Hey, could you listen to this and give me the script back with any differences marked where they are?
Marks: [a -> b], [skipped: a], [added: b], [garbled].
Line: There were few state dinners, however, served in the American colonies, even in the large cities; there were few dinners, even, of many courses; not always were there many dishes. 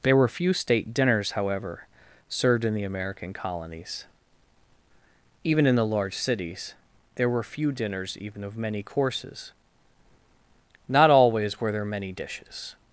There were few state dinners, however, served in the American colonies, even in the large cities; there were few dinners, even, of many courses; not always were there many dishes.